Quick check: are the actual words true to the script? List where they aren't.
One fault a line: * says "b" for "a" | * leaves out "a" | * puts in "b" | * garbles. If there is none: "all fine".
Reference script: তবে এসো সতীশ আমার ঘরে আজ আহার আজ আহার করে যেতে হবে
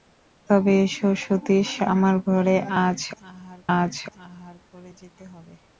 all fine